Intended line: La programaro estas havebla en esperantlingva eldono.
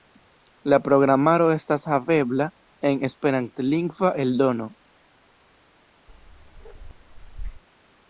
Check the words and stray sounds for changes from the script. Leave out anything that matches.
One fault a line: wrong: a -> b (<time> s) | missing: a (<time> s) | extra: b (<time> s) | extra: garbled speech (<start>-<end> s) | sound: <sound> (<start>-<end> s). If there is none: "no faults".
sound: bark (6.1-7.6 s)